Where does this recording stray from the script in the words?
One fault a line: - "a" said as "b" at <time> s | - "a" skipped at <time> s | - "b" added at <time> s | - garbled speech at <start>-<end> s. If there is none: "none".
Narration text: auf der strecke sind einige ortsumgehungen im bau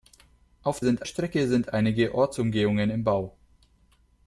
- "der" said as "sind" at 0.8 s